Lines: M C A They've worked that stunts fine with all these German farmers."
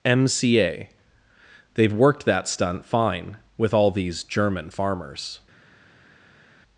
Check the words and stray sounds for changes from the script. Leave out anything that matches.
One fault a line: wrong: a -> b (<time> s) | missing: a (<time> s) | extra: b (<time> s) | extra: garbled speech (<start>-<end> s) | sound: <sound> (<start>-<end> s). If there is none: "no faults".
wrong: stunts -> stunt (2.5 s)